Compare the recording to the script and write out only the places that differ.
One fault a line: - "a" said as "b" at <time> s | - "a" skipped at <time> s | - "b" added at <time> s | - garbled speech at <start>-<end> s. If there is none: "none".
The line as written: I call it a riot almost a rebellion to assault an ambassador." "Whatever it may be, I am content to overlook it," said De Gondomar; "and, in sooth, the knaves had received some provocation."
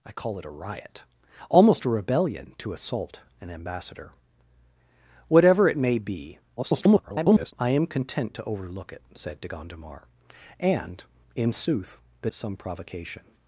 - garbled speech at 6.6-7.5 s
- "knaves had received" skipped at 12.3 s